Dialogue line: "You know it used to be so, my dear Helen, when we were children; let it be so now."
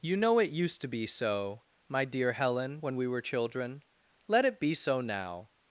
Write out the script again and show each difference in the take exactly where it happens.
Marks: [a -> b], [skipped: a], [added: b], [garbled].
"You know it used to be so, my dear Helen, when we were children; let it be so now."